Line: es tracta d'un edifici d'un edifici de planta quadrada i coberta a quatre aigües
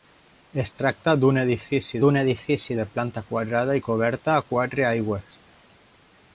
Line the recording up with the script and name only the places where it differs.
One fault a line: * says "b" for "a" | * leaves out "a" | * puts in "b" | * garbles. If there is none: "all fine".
all fine